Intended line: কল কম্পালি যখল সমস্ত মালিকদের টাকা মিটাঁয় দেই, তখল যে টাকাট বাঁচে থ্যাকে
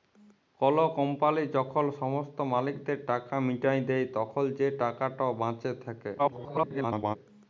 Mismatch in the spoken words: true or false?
true